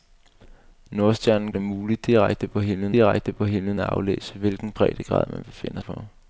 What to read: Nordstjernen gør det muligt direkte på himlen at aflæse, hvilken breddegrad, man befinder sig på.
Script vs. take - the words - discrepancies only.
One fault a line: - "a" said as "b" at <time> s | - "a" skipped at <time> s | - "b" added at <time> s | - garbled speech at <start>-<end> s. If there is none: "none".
- "gør" skipped at 1.5 s
- "direkte på himlen" added at 2.9 s
- "sig" skipped at 5.8 s